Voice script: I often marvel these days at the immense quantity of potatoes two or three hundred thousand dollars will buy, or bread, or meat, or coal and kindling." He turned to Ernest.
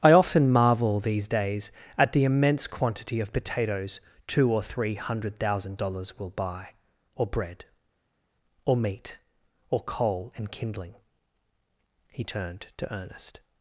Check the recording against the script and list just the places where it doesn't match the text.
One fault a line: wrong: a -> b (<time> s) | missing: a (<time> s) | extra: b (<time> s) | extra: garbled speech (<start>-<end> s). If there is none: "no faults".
no faults